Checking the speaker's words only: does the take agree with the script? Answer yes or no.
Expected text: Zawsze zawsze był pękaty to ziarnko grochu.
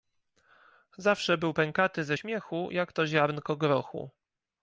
no